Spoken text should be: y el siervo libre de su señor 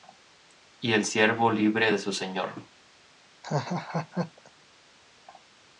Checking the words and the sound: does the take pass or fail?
fail